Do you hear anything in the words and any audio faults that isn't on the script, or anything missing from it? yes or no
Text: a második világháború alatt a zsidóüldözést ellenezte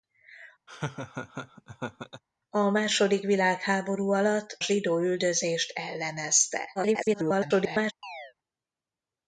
yes